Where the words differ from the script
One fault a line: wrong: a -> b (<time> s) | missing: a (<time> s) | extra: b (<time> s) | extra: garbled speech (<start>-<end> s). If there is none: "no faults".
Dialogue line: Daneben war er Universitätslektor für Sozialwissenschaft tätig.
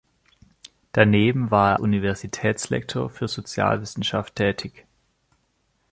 no faults